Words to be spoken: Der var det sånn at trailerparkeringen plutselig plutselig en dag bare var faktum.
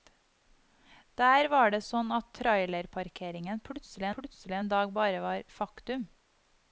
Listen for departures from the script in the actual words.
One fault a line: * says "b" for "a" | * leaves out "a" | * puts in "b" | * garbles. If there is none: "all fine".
all fine